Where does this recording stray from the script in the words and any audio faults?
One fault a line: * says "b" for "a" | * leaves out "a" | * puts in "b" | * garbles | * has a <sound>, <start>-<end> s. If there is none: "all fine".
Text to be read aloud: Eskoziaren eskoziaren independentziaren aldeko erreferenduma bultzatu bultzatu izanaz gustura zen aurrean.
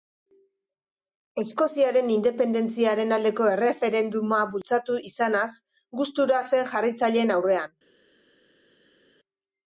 * leaves out "eskoziaren"
* leaves out "bultzatu"
* puts in "jarraitzaileen"